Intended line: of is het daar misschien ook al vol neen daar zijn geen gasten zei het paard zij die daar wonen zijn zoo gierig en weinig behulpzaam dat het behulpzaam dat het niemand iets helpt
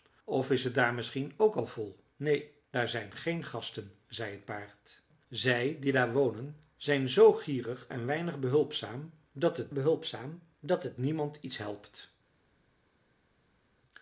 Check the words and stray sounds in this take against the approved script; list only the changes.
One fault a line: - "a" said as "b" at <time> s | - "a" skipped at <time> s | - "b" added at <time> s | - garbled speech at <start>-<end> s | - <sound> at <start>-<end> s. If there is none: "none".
none